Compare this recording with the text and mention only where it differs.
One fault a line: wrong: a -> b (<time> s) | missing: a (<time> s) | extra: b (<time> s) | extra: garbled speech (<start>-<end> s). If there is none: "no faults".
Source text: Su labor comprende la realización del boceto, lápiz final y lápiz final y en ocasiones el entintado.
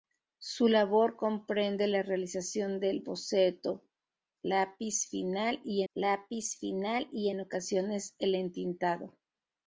no faults